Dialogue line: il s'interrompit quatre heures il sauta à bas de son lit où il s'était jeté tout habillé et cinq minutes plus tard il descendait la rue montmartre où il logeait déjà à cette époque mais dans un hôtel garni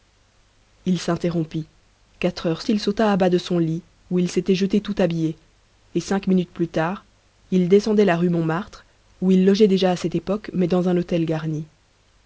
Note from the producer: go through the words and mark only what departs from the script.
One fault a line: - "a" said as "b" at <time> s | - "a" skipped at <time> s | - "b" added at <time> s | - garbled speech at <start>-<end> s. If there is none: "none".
none